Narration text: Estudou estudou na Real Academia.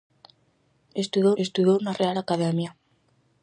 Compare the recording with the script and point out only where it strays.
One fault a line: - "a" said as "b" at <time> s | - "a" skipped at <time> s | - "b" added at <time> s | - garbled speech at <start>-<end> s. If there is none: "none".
none